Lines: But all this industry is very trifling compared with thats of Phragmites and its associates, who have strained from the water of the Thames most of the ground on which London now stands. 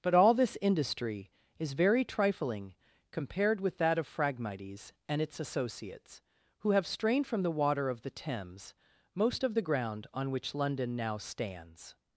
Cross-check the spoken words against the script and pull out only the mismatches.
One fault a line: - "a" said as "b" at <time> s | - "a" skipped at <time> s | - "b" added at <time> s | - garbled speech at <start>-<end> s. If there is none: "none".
- "thats" said as "that" at 3.8 s